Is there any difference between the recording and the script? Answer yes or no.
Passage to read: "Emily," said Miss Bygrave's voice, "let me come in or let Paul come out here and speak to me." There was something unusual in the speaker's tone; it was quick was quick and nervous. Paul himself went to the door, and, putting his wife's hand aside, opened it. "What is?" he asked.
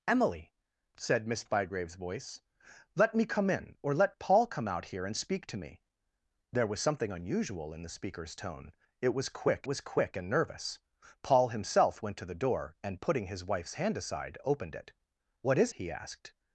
no